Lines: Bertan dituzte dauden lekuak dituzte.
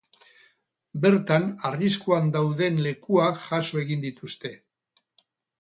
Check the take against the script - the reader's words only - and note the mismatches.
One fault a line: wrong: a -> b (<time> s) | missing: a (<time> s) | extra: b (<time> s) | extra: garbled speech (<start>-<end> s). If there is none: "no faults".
wrong: dituzte -> arriskuan (1.7 s)
extra: jaso egin (3.5 s)